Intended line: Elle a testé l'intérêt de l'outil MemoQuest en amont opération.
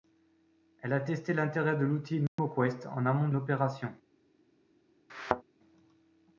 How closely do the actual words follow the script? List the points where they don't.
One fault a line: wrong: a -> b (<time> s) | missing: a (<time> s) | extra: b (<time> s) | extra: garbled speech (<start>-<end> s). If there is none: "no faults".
no faults